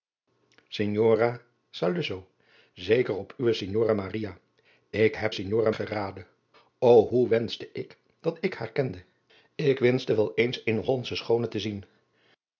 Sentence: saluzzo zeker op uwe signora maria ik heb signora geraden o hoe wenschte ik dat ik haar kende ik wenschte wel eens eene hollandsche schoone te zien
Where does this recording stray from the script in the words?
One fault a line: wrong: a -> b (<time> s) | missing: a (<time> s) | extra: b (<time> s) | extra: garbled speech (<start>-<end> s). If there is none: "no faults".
no faults